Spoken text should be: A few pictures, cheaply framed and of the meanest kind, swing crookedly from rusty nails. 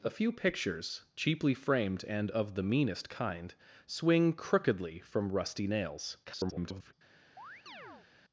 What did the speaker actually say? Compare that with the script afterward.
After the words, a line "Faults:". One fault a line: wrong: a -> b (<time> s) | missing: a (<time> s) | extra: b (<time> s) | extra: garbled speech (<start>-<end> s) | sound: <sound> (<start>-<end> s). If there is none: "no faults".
A few pictures, cheaply framed and of the meanest kind, swing crookedly from rusty nails. [garbled]
Faults:
extra: garbled speech (6.2-6.9 s)
sound: chirp (7.4-8.1 s)